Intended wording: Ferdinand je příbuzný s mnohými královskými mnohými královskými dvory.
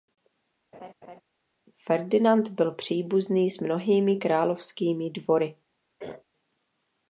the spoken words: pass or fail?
fail